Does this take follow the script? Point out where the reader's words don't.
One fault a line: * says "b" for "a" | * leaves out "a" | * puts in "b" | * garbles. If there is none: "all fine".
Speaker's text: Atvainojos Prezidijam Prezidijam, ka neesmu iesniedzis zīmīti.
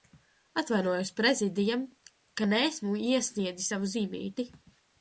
* leaves out "Prezidijam"
* puts in "savu"